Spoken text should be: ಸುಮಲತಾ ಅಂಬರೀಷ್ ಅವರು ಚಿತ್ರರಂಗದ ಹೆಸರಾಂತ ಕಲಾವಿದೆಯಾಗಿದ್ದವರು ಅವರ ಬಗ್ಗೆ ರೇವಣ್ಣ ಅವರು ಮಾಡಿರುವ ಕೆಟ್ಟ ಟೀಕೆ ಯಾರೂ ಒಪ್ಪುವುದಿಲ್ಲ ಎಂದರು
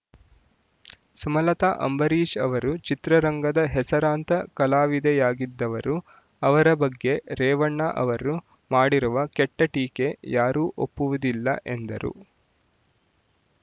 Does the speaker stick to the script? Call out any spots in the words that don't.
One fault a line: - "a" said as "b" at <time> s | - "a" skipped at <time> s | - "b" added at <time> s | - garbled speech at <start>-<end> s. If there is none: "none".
none